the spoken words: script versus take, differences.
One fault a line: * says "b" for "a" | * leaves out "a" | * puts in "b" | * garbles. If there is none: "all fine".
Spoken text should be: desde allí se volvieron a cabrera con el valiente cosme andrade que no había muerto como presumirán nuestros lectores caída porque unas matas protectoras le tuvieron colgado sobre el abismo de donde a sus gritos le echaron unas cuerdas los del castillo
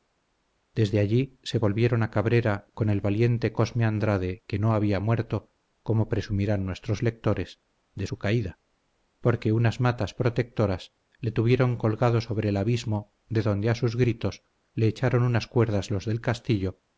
* puts in "de su"